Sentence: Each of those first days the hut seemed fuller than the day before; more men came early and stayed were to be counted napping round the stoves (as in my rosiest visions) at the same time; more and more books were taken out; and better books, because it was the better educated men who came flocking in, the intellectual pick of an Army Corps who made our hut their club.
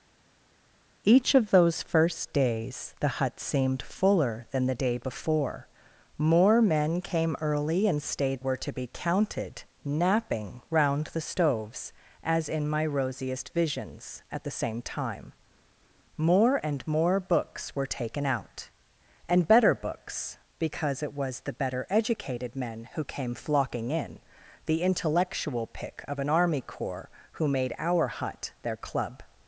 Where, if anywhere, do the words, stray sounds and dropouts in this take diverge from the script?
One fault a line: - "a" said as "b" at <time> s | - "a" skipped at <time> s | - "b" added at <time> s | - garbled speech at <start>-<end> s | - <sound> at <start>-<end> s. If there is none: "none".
none